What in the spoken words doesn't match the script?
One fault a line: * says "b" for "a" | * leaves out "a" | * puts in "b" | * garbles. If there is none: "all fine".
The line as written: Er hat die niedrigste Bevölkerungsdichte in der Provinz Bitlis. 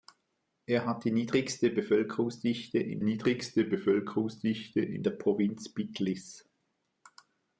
* puts in "niedrigste Bevölkerungsdichte in"